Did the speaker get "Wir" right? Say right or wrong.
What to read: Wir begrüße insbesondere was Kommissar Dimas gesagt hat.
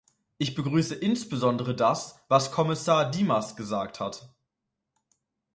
wrong